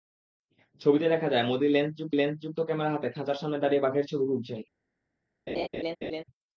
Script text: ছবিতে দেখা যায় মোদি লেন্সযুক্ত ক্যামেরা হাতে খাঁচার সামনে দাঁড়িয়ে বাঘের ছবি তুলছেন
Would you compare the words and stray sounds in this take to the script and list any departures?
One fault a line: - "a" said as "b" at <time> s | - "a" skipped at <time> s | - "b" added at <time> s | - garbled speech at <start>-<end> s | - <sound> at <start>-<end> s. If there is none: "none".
- "লেন্সযুক্ত" added at 2.1 s
- laugh at 5.5-6.2 s